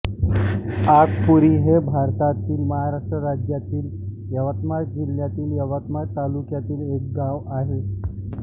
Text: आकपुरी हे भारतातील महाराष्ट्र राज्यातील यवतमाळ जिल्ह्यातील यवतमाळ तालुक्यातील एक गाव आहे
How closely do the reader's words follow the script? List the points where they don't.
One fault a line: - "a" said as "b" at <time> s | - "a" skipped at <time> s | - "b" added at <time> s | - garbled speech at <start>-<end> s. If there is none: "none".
none